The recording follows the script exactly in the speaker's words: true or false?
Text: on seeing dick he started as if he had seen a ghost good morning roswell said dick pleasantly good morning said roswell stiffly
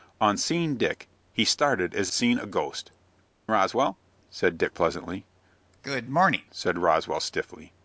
false